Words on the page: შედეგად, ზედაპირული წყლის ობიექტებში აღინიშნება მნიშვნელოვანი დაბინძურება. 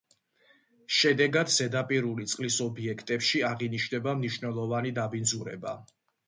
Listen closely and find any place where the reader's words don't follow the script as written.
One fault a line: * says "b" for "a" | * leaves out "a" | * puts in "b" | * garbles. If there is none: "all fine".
all fine